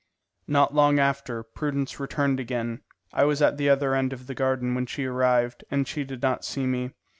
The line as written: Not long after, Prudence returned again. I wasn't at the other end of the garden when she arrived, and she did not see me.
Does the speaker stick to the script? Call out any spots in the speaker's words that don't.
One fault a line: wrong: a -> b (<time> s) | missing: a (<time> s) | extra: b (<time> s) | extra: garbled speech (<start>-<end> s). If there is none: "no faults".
wrong: wasn't -> was (3.2 s)